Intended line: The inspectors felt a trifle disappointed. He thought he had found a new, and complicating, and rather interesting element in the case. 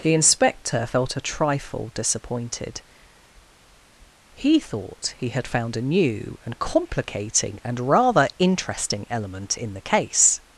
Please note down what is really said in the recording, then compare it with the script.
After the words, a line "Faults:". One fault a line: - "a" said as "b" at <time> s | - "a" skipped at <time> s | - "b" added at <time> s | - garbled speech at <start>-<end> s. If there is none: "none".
The inspector felt a trifle disappointed. He thought he had found a new, and complicating, and rather interesting element in the case.
Faults:
- "inspectors" said as "inspector" at 0.1 s